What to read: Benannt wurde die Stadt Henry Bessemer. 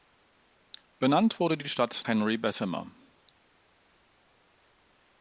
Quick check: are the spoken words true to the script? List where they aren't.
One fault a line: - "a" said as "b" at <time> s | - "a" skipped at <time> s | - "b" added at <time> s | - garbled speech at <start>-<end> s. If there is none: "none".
none